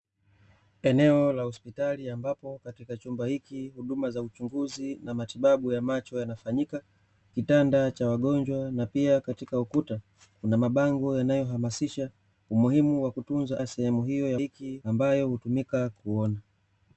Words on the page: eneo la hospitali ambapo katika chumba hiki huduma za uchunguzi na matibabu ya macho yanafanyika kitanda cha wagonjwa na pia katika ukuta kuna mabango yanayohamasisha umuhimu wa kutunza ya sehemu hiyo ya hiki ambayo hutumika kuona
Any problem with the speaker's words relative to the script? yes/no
no